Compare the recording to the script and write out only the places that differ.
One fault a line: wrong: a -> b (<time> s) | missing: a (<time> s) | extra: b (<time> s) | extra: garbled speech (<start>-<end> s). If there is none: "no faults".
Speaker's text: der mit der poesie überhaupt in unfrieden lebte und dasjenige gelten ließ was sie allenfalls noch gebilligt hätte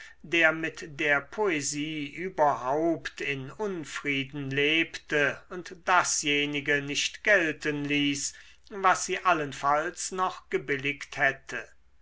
extra: nicht (6.8 s)